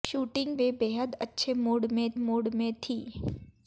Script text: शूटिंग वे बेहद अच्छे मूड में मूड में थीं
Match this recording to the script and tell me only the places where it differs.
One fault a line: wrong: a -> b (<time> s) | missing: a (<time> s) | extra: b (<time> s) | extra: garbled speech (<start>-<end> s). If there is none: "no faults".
no faults